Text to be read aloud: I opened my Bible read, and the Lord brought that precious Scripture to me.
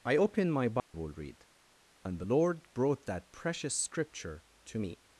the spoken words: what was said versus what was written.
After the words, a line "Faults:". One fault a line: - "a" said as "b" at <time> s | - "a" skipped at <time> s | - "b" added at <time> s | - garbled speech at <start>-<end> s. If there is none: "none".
I opened my Bible read, and the Lord brought that precious Scripture to me.
Faults:
none